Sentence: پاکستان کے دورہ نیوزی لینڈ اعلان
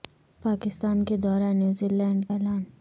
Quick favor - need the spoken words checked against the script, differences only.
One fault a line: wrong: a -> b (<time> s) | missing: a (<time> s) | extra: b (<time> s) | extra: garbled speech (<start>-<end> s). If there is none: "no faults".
no faults